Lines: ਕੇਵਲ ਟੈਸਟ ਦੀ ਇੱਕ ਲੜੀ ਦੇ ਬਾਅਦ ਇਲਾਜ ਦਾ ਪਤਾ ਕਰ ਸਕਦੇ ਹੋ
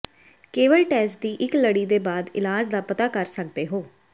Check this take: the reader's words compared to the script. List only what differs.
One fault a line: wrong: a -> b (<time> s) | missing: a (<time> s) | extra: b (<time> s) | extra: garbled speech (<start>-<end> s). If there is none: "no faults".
no faults